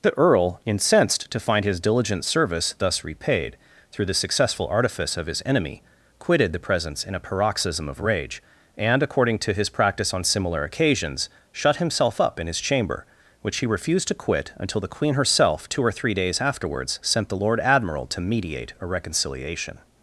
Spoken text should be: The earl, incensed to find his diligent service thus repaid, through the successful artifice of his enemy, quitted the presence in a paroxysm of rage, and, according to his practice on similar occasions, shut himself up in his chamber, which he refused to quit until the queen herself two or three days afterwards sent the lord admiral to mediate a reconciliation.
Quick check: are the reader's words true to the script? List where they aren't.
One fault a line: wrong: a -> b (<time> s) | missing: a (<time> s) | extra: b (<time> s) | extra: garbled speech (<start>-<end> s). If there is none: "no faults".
no faults